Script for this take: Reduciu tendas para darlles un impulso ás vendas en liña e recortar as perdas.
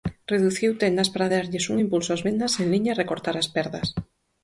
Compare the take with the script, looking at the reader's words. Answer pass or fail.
pass